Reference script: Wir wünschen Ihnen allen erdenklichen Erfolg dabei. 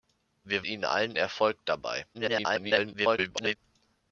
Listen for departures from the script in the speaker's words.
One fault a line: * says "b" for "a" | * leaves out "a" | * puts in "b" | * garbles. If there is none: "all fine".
* leaves out "wünschen"
* leaves out "erdenklichen"
* garbles